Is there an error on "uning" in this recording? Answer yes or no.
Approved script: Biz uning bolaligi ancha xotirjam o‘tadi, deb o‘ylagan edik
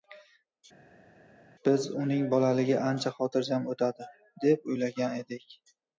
no